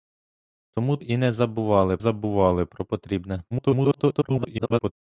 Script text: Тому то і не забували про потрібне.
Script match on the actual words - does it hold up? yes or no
no